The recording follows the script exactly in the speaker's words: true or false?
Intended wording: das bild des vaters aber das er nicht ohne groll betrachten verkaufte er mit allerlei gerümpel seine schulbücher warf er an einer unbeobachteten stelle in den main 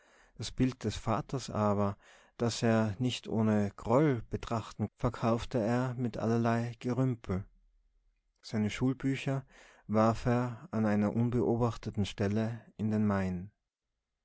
true